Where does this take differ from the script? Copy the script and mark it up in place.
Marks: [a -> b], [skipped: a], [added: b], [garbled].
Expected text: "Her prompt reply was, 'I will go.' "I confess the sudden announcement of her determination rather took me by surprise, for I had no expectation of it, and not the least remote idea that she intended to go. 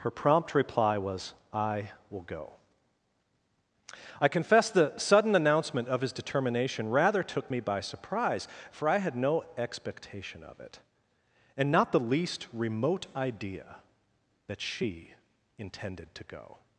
"Her prompt reply was, 'I will go.' "I confess the sudden announcement of [her -> his] determination rather took me by surprise, for I had no expectation of it, and not the least remote idea that she intended to go.